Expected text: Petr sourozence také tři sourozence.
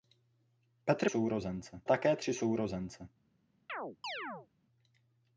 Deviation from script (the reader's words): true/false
false